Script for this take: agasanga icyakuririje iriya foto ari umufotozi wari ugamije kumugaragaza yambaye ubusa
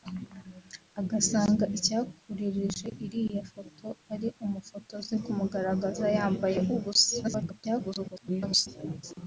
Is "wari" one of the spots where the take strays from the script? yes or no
yes